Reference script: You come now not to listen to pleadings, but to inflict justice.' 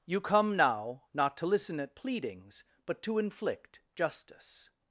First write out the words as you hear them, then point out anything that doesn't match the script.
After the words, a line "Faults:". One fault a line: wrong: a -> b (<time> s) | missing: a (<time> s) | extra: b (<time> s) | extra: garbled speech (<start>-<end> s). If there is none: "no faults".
You come now not to listen at pleadings, but to inflict justice.'
Faults:
wrong: to -> at (1.8 s)